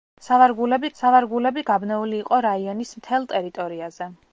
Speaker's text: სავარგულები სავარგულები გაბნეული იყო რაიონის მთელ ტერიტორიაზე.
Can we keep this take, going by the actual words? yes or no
yes